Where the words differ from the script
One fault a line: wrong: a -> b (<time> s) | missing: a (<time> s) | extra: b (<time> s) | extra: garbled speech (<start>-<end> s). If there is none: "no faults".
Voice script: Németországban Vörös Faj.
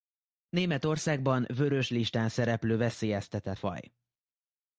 extra: Listán szereplő veszélyeztetett (1.9 s)